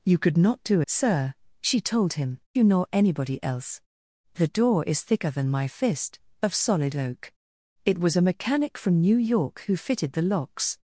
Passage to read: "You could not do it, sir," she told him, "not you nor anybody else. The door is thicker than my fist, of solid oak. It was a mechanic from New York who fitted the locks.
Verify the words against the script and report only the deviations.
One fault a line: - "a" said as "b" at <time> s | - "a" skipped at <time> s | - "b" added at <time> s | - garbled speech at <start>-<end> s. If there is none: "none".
- "it" skipped at 0.8 s
- "not" skipped at 2.4 s